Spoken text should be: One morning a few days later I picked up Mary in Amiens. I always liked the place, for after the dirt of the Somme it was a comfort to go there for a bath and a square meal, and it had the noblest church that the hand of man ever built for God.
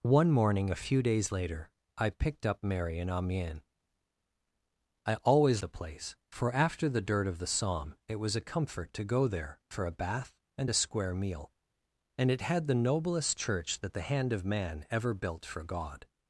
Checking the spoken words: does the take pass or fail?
fail